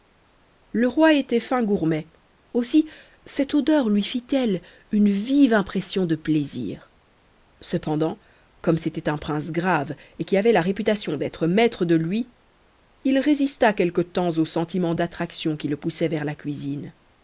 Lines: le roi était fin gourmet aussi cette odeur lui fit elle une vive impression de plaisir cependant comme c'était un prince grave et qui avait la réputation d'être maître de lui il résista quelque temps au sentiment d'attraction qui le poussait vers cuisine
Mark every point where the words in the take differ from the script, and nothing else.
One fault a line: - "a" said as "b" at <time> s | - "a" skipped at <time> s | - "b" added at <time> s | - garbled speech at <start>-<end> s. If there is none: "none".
- "la" added at 16.2 s